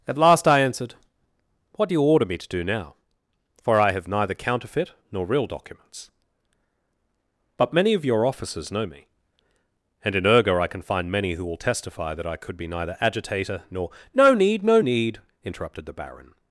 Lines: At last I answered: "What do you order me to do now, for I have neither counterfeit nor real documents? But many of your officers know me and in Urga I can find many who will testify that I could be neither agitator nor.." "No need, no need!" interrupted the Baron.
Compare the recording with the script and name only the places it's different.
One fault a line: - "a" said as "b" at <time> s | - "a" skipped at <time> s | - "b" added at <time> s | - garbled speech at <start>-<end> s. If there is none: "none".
none